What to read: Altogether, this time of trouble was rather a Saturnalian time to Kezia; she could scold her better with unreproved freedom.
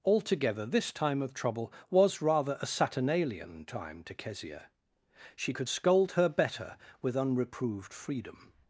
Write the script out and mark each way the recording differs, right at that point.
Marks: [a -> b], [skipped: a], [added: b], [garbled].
Altogether, this time of trouble was rather a Saturnalian time to Kezia; she could scold her better with unreproved freedom.